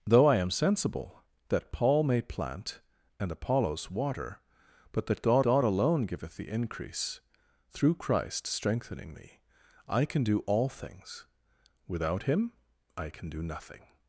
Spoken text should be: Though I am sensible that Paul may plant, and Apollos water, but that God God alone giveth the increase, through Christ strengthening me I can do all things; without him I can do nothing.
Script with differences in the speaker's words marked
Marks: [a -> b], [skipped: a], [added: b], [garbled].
Though I am sensible that Paul may plant, and Apollos water, but that God God alone giveth the increase, through Christ strengthening me I can do all things; without him I can do nothing.